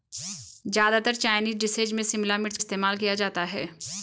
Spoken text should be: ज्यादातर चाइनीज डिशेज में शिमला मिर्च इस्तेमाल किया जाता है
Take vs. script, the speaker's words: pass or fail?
pass